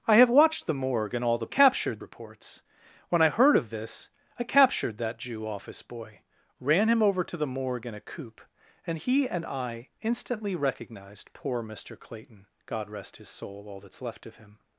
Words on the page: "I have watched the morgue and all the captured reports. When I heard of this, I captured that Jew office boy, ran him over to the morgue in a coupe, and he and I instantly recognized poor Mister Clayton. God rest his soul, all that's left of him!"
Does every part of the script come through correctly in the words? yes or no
yes